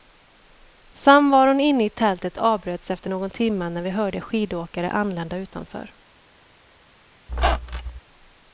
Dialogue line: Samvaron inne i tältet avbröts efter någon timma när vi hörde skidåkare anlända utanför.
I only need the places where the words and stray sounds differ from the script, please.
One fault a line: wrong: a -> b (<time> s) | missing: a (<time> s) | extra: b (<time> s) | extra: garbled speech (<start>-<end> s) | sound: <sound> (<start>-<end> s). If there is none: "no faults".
sound: squeak (7.3-8.0 s)